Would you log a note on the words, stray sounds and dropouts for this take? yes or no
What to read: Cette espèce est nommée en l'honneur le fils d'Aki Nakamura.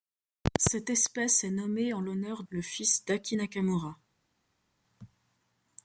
no